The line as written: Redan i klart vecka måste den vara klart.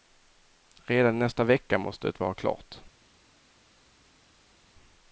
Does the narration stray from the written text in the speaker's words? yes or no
yes